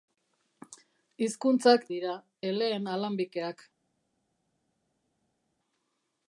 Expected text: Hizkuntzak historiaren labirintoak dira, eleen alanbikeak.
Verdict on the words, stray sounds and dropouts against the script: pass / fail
fail